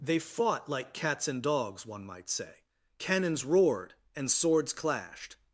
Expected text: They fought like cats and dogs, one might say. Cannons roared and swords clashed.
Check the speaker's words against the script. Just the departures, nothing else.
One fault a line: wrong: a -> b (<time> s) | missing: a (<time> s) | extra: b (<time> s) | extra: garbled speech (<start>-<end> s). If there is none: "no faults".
no faults